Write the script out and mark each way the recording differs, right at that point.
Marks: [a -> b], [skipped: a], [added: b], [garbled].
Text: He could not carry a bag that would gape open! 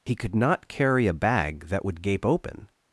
He could not carry a bag that would gape open!